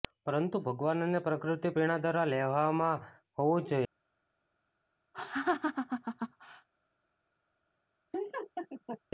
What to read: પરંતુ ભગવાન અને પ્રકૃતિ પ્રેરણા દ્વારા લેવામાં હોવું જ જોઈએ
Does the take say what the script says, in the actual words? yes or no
yes